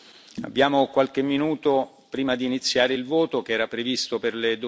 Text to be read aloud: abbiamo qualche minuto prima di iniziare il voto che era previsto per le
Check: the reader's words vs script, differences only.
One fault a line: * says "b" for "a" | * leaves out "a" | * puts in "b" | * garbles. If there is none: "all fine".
all fine